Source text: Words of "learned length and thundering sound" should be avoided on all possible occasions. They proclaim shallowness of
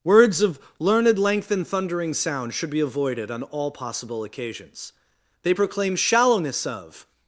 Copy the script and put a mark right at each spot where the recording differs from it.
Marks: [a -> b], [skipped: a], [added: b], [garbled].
Words of "learned length and thundering sound" should be avoided on all possible occasions. They proclaim shallowness of